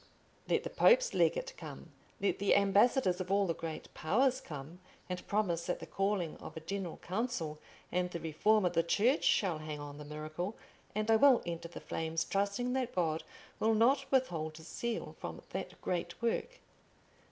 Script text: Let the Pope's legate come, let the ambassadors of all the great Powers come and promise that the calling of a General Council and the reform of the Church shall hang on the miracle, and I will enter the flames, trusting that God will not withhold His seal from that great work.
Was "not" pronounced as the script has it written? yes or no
yes